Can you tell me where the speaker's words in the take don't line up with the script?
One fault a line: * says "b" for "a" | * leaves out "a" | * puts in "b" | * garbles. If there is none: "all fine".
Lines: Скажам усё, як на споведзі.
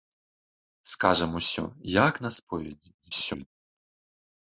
* garbles